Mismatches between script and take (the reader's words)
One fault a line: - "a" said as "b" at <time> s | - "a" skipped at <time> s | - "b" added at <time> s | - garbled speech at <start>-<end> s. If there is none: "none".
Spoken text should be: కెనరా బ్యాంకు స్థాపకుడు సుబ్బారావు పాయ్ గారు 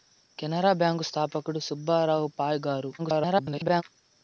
- garbled speech at 3.0-3.8 s